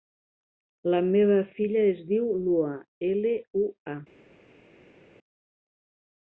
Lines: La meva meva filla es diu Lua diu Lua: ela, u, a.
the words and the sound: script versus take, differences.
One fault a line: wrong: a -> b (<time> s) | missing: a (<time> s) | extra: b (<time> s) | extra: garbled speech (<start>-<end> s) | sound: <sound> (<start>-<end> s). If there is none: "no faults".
missing: meva (1.4 s)
missing: diu Lua (2.7 s)